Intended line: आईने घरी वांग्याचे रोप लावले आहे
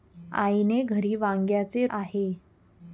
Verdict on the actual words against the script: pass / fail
fail